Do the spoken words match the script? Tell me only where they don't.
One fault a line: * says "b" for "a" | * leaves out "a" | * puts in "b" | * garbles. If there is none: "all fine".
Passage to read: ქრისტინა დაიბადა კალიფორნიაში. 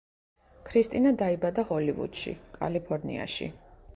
* puts in "ჰოლივუდში"